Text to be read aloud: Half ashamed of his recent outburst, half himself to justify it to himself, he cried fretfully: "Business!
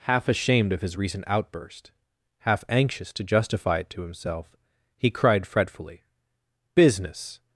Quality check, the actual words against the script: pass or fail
fail